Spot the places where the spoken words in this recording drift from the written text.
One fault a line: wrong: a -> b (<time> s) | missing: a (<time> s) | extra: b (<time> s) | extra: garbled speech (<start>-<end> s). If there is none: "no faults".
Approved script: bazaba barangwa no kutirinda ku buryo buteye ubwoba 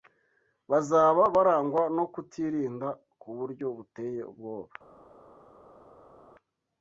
no faults